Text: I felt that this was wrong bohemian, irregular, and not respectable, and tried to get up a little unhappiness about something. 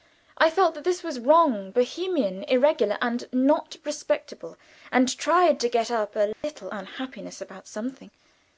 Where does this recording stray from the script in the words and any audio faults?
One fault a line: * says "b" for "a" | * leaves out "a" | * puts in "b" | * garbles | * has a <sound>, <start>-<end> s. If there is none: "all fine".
* has a dropout, 6.3-6.4 s